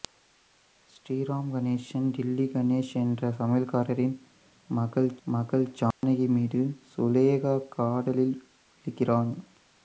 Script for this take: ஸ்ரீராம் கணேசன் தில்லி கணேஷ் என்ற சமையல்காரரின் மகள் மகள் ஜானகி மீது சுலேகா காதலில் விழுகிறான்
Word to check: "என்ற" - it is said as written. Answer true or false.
true